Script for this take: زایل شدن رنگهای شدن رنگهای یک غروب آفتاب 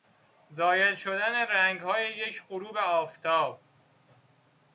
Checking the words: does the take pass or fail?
fail